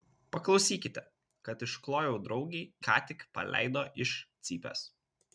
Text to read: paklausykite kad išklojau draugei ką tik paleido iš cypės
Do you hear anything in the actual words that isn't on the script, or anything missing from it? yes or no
no